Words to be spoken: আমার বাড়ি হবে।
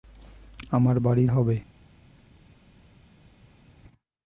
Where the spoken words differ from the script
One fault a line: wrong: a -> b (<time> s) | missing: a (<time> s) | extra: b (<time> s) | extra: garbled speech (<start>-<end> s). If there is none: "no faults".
no faults